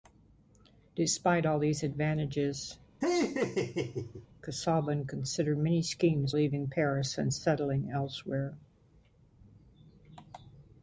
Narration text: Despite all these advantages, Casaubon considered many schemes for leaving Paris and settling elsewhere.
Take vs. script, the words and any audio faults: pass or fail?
fail